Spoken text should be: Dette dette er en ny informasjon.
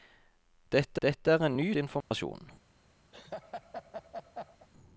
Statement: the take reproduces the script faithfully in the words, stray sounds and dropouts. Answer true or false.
false